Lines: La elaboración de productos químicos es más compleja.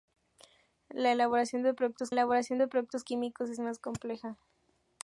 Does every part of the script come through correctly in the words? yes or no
no